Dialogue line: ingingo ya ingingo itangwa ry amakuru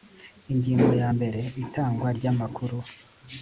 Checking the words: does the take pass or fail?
fail